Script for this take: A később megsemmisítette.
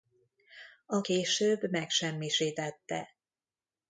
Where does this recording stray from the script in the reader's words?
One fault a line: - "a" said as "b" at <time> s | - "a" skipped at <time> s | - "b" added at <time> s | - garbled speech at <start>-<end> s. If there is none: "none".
none